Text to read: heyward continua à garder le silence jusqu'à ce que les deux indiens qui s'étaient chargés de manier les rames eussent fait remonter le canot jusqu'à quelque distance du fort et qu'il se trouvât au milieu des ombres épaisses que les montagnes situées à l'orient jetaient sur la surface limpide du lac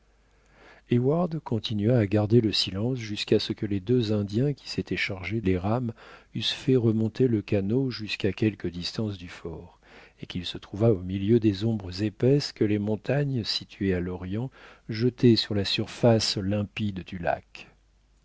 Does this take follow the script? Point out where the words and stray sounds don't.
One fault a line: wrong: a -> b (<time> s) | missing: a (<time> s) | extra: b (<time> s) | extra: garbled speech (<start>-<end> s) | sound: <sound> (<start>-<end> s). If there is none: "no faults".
missing: de manier (5.4 s)